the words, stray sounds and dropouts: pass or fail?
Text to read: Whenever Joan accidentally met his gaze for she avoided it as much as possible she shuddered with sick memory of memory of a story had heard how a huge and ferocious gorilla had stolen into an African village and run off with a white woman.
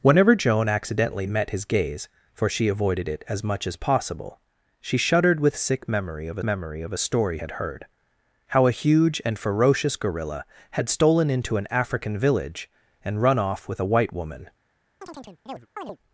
fail